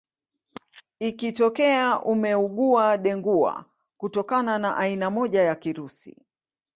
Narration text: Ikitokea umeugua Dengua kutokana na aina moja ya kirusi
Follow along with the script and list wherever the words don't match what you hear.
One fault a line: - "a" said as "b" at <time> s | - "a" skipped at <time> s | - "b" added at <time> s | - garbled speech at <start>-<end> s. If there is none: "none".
none